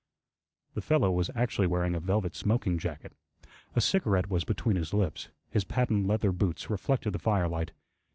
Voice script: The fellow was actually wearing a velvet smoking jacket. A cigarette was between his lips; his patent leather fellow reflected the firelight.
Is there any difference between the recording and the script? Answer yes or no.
yes